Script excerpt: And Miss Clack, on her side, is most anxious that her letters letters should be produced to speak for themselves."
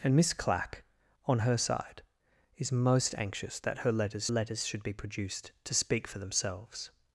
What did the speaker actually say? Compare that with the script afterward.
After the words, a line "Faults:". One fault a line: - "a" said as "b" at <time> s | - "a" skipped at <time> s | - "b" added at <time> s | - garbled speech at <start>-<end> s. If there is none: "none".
And Miss Clack, on her side, is most anxious that her letters letters should be produced to speak for themselves."
Faults:
none